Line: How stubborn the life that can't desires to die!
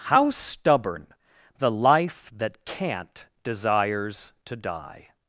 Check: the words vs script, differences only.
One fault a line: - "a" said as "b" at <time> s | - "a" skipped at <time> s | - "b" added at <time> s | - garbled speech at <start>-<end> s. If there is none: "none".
none